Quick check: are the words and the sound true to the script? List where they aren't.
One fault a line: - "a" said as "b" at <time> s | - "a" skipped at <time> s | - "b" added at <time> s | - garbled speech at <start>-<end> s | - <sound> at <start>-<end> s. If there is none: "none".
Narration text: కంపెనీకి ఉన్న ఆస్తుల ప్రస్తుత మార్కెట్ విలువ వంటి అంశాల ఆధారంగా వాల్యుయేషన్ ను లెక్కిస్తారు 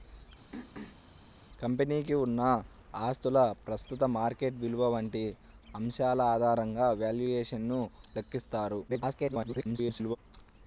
- throat clearing at 0.5-1.0 s
- garbled speech at 8.9-10.2 s